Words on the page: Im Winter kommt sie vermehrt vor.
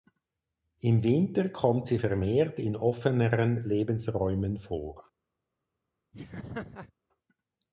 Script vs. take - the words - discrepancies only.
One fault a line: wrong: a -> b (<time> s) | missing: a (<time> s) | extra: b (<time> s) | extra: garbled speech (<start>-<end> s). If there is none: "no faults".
extra: in offeneren Lebensräumen (2.6 s)